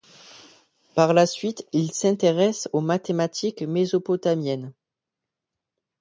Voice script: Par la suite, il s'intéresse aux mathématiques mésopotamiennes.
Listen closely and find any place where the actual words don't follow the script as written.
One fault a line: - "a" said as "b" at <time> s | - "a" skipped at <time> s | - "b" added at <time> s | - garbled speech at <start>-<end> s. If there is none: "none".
none